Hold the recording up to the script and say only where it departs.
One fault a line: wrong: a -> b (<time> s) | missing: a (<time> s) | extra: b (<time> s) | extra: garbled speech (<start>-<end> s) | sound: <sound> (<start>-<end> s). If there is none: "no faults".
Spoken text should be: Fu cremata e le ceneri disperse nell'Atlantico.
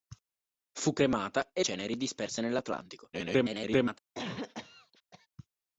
missing: le (1.6 s)
extra: garbled speech (3.1-4.0 s)
sound: cough (4.1-5.3 s)